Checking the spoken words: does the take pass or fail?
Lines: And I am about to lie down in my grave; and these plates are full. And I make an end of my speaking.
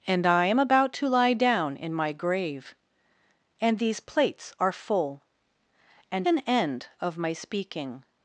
fail